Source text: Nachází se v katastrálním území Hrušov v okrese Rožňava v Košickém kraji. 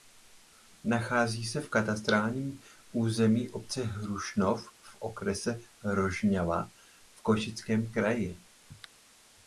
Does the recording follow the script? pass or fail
fail